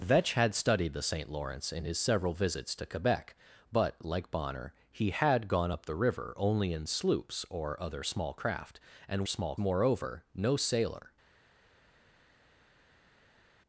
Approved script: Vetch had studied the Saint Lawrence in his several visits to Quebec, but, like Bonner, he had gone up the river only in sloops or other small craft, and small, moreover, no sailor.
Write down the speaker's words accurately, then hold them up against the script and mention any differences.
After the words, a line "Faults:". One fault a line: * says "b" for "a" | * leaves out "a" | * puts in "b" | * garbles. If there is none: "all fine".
Vetch had studied the Saint Lawrence in his several visits to Quebec, but, like Bonner, he had gone up the river only in sloops or other small craft, and small, moreover, no sailor.
Faults:
all fine